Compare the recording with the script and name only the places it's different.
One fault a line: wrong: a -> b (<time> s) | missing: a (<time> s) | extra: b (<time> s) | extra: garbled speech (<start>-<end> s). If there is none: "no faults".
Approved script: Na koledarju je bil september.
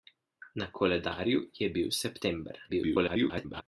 extra: garbled speech (2.7-3.6 s)